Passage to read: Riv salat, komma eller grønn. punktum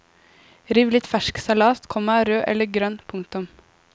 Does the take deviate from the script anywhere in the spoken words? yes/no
yes